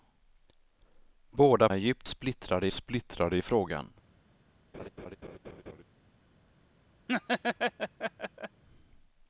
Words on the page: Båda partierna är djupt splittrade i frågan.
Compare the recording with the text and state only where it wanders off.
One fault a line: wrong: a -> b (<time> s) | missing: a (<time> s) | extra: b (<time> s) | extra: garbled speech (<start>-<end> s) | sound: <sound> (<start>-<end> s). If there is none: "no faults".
missing: partierna (1.7 s)
extra: splittrade (2.7 s)
sound: laugh (4.7-5.8 s)
sound: laugh (7.1-8.6 s)